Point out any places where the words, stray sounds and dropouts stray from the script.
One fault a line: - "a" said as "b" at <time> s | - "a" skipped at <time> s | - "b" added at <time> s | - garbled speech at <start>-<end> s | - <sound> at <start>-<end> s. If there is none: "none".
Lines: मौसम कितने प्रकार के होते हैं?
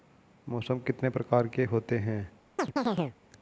- chirp at 2.6-3.2 s